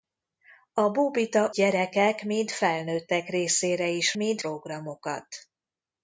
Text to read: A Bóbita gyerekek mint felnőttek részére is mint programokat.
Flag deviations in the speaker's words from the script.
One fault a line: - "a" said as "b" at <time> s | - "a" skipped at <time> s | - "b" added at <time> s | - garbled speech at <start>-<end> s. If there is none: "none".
none